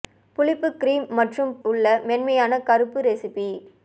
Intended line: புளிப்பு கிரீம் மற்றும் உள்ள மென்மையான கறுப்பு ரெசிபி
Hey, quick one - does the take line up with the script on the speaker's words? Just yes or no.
yes